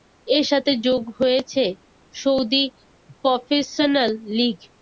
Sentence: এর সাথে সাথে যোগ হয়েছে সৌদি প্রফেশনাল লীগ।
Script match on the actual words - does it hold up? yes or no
no